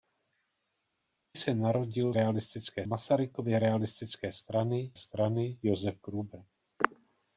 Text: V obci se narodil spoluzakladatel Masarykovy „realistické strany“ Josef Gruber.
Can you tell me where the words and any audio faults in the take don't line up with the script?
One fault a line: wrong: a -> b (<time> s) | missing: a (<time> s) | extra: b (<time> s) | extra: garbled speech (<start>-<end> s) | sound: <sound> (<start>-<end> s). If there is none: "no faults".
missing: obci (1.4 s)
wrong: spoluzakladatel -> realistické (2.1 s)
extra: strany (5.0 s)